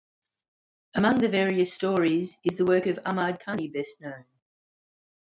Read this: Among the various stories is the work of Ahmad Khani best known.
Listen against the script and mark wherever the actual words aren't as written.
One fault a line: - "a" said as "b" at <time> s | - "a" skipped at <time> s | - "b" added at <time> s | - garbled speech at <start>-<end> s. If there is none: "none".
none